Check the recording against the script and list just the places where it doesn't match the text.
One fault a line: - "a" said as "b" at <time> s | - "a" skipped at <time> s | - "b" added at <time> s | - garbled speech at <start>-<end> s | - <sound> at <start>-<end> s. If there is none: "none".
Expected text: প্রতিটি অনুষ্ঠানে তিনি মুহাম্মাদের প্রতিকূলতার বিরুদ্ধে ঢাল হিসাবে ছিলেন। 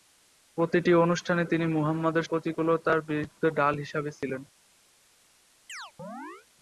- chirp at 5.7-6.5 s